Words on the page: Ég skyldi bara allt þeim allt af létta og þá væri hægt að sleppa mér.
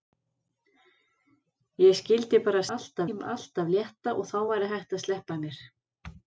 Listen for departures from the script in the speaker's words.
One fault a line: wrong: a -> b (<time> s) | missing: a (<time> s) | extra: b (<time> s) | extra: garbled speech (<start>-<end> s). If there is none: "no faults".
no faults